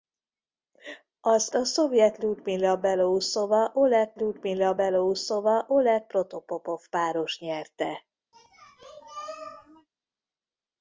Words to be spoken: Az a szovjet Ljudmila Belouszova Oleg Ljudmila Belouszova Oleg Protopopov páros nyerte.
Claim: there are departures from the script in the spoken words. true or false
false